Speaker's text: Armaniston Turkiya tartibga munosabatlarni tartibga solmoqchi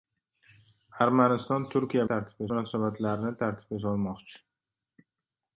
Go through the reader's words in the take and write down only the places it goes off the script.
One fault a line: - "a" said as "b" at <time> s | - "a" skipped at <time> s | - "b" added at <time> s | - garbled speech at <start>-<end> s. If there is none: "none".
none